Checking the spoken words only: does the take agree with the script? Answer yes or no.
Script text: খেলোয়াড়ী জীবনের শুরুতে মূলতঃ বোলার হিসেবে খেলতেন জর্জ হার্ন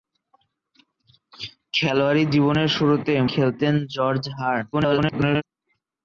no